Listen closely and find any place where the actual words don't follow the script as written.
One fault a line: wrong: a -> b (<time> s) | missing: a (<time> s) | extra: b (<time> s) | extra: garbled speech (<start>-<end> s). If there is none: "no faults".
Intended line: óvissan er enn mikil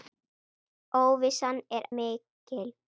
missing: enn (1.9 s)